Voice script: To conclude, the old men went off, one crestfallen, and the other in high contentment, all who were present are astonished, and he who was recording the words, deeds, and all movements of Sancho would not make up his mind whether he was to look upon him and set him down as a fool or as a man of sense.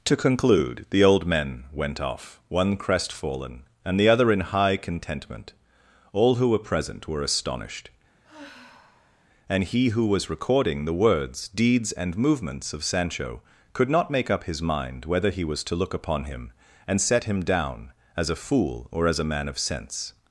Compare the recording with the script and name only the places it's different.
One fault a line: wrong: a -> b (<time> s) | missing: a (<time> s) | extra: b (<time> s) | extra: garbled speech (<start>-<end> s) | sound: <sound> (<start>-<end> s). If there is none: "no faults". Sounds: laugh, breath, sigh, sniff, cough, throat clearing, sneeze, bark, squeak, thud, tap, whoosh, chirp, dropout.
wrong: are -> were (7.1 s)
sound: sigh (8.2-9.3 s)
missing: all (12.2 s)
wrong: would -> could (13.7 s)